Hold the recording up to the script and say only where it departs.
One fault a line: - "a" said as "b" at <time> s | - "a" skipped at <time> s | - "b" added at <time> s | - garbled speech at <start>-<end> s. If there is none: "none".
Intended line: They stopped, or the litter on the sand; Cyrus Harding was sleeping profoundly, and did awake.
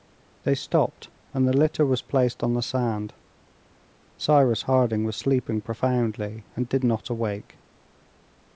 - "or" said as "and" at 1.3 s
- "was placed" added at 1.9 s
- "not" added at 6.8 s